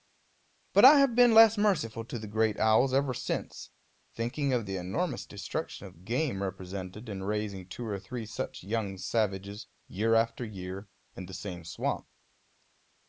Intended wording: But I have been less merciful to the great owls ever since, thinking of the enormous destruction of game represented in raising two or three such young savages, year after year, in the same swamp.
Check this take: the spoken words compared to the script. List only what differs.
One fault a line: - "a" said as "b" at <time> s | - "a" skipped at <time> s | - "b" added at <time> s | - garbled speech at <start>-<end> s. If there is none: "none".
none